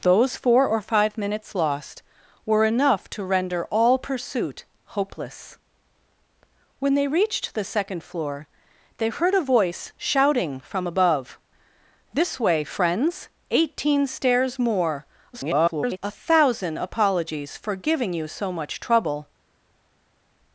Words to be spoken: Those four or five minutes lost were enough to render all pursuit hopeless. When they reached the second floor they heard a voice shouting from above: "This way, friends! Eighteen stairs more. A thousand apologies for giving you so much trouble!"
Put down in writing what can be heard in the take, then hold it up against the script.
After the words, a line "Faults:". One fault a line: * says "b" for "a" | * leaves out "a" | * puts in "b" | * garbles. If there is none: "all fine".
Those four or five minutes lost were enough to render all pursuit hopeless. When they reached the second floor they heard a voice shouting from above: "This way, friends! Eighteen stairs more. [garbled] A thousand apologies for giving you so much trouble!"
Faults:
* garbles